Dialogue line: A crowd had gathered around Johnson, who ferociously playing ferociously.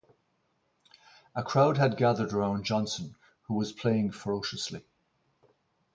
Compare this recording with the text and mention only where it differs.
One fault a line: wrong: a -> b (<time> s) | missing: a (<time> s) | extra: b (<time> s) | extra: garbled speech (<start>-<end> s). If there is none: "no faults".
wrong: ferociously -> was (3.6 s)